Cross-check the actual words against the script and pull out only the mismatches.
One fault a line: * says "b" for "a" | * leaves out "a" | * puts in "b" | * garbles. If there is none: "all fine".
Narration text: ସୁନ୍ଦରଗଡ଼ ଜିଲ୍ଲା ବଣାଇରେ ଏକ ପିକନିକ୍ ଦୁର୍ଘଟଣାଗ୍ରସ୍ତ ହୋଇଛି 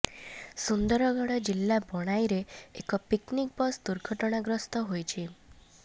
* puts in "ବସ୍"